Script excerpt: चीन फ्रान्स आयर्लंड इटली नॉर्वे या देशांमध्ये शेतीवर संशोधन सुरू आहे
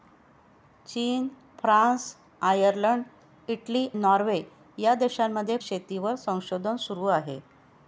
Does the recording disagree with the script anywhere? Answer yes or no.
no